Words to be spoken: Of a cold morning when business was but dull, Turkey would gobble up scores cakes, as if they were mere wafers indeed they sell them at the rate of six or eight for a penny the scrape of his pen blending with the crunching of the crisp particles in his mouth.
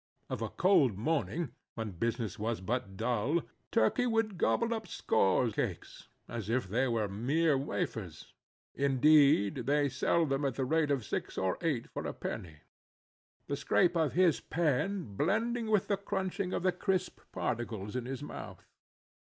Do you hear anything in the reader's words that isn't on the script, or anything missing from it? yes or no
no